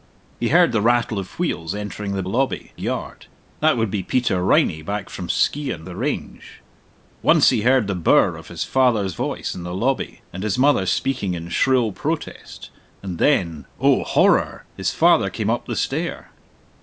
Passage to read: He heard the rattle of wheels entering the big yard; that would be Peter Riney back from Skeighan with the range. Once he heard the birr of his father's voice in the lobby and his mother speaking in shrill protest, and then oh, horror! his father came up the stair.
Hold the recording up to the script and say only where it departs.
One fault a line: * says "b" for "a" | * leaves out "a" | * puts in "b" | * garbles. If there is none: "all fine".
* says "lobby" for "big"
* leaves out "with"